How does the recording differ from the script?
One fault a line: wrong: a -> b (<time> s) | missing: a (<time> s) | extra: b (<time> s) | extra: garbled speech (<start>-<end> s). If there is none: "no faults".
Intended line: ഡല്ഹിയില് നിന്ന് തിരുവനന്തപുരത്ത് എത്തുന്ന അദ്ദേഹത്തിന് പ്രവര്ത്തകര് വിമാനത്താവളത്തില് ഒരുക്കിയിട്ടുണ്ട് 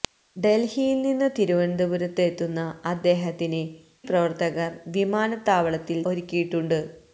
no faults